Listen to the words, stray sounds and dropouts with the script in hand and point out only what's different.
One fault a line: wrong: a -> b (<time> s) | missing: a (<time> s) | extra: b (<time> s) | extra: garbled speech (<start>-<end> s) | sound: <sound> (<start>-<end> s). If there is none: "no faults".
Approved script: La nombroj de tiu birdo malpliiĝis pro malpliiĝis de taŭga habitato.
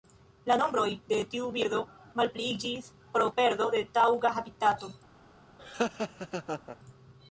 wrong: malpliiĝis -> perdo (3.4 s)
sound: laugh (5.6-6.8 s)